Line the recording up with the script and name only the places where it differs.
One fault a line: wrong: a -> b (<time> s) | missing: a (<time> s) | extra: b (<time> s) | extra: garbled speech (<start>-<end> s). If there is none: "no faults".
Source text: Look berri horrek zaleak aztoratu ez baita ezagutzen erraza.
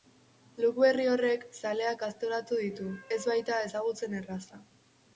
extra: ditu (2.6 s)